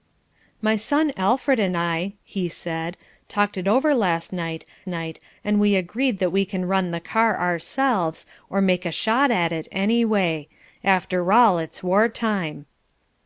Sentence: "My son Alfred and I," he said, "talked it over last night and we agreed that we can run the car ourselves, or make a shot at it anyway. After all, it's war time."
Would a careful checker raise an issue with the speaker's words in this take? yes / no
yes